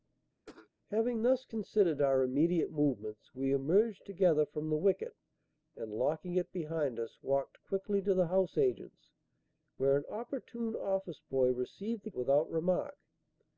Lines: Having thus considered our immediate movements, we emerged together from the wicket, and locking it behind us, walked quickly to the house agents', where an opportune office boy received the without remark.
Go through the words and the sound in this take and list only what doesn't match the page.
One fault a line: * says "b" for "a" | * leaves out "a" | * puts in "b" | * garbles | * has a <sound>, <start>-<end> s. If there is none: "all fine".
* has a cough, 0.4-0.7 s